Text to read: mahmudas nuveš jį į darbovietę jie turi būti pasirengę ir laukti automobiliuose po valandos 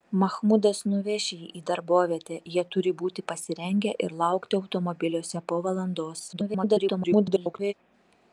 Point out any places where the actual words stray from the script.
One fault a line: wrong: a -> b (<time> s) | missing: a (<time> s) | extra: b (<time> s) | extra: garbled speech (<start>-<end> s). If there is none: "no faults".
extra: garbled speech (6.3-7.7 s)